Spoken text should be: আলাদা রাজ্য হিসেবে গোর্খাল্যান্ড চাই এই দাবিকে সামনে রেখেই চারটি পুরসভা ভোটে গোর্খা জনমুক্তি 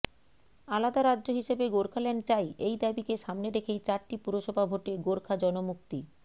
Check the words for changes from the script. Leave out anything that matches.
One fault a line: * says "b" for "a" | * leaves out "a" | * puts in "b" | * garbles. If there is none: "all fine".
all fine